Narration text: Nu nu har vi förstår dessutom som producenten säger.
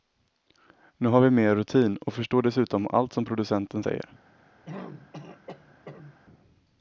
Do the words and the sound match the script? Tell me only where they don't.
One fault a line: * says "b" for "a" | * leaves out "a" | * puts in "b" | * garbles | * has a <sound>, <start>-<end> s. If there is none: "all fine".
* leaves out "nu"
* puts in "mer rutin och"
* puts in "allt"
* has a throat clearing, 4.7-6.2 s